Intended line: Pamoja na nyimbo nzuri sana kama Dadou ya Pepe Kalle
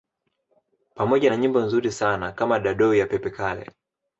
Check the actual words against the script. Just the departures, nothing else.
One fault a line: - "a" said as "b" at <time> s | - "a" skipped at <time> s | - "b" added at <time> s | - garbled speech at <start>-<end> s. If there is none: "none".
none